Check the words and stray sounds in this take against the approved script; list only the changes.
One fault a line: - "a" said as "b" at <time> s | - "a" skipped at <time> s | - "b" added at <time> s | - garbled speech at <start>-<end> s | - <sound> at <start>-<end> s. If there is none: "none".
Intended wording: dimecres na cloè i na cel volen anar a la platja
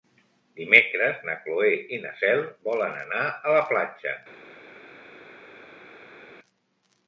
none